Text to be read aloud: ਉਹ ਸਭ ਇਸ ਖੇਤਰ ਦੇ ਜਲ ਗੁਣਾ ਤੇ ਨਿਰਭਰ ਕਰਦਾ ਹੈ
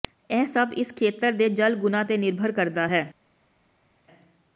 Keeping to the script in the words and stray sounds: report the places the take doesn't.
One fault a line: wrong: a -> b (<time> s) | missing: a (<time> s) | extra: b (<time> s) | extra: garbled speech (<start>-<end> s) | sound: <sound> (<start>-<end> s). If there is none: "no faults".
wrong: ਉਹ -> ਇਹ (0.3 s)